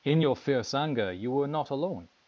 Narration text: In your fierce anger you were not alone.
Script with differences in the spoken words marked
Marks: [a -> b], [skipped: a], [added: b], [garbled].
In your fierce anger you were not alone.